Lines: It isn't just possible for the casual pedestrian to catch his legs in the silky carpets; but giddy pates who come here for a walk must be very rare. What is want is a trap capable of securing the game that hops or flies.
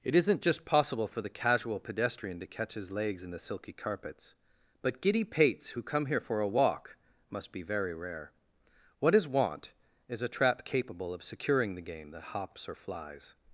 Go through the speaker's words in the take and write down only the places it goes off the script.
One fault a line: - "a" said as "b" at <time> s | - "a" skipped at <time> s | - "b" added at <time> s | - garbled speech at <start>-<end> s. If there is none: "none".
none